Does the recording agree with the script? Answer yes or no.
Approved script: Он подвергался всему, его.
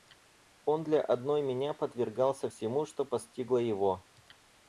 no